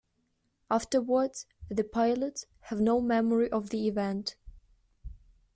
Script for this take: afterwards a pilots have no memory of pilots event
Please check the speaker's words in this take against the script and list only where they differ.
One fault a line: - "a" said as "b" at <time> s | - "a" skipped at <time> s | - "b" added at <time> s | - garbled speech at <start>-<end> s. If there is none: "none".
- "a" said as "the" at 1.7 s
- "pilots" said as "the" at 3.7 s